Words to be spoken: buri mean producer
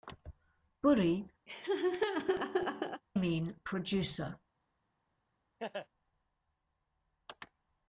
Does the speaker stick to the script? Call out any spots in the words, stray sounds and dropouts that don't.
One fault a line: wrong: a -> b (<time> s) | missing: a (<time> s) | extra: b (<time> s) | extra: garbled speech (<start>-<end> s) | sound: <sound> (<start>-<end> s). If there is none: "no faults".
sound: laugh (1.5-3.0 s)
sound: laugh (5.6-5.9 s)